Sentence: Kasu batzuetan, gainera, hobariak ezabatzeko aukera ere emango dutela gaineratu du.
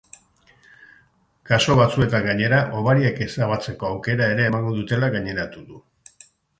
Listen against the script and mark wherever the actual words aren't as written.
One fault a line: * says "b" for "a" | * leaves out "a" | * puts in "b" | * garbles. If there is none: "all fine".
all fine